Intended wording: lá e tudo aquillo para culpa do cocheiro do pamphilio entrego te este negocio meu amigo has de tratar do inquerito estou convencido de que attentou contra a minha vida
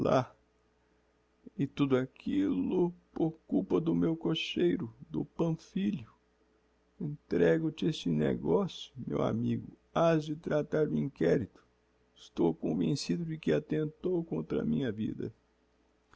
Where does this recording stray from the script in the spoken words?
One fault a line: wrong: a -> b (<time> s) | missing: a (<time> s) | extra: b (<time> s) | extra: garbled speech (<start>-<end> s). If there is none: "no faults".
wrong: para -> por (3.1 s)
extra: meu (3.9 s)